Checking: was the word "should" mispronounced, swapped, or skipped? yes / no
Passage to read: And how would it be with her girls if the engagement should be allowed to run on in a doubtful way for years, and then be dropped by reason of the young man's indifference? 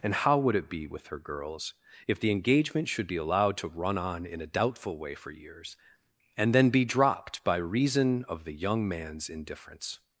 no